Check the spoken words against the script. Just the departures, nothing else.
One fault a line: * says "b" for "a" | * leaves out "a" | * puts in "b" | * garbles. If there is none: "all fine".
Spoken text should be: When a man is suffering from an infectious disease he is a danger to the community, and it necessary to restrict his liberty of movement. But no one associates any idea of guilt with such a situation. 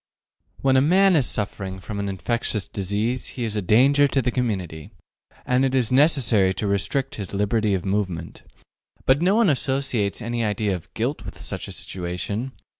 * puts in "is"